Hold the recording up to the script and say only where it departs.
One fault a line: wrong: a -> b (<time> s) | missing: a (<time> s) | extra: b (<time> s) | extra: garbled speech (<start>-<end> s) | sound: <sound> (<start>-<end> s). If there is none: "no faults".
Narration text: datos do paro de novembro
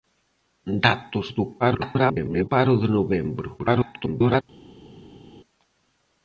extra: garbled speech (1.6-2.5 s)
extra: garbled speech (3.6-4.4 s)